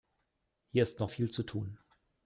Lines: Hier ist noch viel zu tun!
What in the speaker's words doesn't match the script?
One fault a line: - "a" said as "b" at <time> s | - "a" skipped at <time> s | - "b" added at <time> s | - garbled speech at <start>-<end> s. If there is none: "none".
none